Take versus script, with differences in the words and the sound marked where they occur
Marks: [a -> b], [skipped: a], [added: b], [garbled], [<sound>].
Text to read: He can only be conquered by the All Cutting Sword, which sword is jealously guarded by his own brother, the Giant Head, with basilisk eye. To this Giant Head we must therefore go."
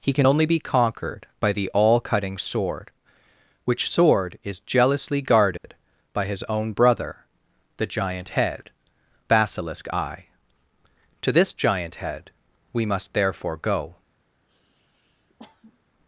He can only be conquered by the All Cutting Sword, which sword is jealously guarded [dropout] by his own brother, the Giant Head, [skipped: with] basilisk eye. To this Giant Head we must therefore go." [sniff]